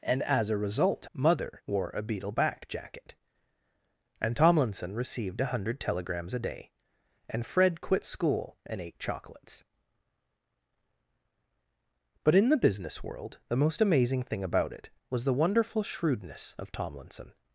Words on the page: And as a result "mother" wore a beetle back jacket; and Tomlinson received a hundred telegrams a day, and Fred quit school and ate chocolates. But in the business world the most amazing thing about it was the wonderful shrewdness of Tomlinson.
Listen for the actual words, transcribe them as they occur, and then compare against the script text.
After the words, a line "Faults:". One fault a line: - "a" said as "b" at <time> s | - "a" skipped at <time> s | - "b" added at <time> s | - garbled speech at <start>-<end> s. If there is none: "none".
And as a result "mother" wore a beetle back jacket; and Tomlinson received a hundred telegrams a day, and Fred quit school and ate chocolates. But in the business world the most amazing thing about it was the wonderful shrewdness of Tomlinson.
Faults:
none